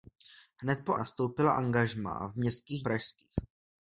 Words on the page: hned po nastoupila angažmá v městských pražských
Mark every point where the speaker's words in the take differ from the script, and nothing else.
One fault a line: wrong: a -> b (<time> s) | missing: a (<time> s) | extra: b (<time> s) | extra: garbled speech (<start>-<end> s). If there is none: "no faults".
no faults